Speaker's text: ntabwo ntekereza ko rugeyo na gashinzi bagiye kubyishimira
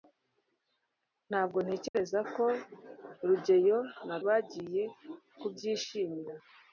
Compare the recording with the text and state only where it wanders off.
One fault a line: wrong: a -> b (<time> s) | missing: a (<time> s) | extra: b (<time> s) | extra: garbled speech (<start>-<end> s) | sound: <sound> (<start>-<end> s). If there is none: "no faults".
sound: dropout (1.9-1.9 s)
missing: gashinzi (4.2 s)